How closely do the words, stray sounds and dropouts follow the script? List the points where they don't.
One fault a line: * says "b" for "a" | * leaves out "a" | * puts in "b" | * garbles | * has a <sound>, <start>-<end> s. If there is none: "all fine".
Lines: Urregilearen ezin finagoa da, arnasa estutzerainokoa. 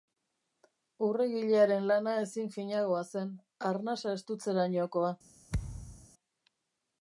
* puts in "lana"
* says "zen" for "da"
* has a thud, 5.5-6.1 s